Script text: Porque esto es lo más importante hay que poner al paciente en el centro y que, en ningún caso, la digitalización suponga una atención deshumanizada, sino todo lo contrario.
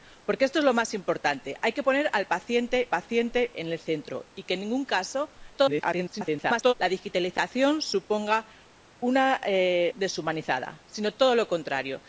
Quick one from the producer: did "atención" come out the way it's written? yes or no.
no